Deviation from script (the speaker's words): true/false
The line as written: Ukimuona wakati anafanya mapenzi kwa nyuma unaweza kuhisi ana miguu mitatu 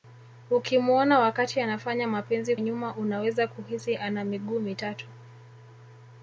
true